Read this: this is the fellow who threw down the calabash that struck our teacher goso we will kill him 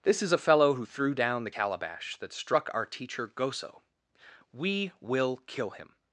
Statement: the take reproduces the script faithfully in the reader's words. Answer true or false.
false